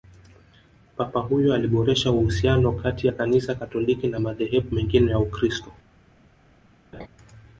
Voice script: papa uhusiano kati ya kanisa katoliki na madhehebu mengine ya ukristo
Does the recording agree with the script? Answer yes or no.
no